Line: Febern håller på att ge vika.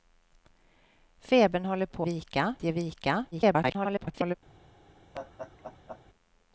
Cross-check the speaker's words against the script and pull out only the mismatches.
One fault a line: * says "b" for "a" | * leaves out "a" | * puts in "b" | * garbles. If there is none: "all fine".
* says "vika" for "att"
* garbles